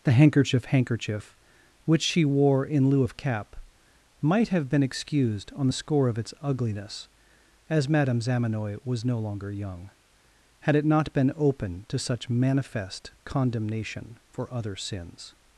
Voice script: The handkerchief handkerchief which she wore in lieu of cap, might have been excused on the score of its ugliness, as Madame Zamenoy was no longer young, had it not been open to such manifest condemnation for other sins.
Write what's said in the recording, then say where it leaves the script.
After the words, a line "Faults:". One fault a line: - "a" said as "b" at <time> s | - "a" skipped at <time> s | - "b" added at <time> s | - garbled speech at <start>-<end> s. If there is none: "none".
The handkerchief handkerchief which she wore in lieu of cap, might have been excused on the score of its ugliness, as Madame Zamenoy was no longer young, had it not been open to such manifest condemnation for other sins.
Faults:
none